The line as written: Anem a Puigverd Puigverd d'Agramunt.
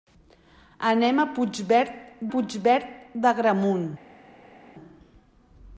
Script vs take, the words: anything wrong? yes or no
no